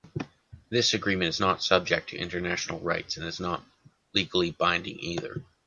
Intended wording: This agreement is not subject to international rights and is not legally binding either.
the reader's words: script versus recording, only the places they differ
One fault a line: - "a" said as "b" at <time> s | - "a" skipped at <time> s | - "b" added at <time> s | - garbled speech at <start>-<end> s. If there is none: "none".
none